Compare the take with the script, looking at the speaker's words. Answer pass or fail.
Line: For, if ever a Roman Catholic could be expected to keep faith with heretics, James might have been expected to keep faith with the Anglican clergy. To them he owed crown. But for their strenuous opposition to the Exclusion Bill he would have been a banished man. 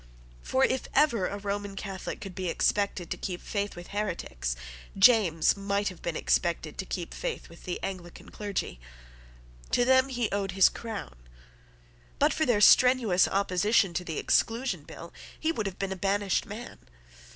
fail